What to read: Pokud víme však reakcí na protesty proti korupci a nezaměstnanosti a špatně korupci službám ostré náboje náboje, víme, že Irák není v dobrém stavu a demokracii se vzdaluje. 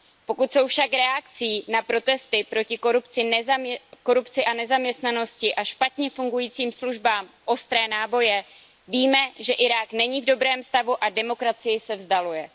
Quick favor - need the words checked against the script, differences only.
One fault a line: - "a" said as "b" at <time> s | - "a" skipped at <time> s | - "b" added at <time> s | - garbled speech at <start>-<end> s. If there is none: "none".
- "víme" said as "jsou" at 0.5 s
- "korupci" said as "fungujícím" at 6.1 s
- "náboje" skipped at 8.4 s